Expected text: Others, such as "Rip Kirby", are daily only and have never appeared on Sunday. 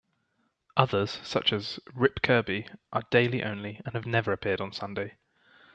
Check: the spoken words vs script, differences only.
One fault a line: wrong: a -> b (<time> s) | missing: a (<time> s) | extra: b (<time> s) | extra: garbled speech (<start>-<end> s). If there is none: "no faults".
no faults